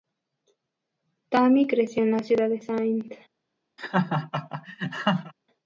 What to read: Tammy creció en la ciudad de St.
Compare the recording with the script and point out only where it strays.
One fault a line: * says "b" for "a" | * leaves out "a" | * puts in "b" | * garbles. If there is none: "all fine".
all fine